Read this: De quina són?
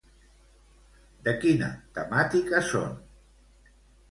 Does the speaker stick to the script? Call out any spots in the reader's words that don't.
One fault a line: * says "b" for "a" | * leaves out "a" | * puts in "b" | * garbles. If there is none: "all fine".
* puts in "temàtica"